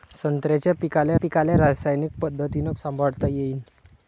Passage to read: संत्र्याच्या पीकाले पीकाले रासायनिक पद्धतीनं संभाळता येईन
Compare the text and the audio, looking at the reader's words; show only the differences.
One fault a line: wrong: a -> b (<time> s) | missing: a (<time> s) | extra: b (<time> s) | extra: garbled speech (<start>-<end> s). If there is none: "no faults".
no faults